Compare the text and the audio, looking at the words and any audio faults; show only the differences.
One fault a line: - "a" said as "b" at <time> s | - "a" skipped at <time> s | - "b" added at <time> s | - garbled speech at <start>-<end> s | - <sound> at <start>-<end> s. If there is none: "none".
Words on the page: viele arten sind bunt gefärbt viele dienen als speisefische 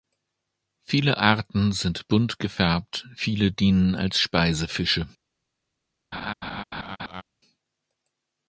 - laugh at 6.1-7.2 s